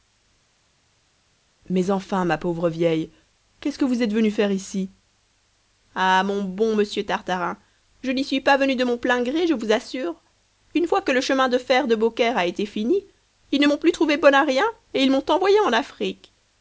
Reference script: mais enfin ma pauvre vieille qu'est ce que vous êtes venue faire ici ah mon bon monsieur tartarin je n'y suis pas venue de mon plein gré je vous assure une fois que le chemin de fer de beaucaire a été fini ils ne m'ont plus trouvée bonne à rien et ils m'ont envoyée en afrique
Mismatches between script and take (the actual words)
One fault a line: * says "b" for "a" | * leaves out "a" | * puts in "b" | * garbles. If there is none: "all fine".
all fine